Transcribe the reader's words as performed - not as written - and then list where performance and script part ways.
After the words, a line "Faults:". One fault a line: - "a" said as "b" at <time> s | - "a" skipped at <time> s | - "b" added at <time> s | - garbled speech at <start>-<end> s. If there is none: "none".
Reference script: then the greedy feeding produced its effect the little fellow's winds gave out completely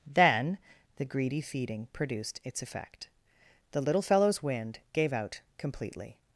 then the greedy feeding produced its effect the little fellow's wind gave out completely
Faults:
- "winds" said as "wind" at 4.4 s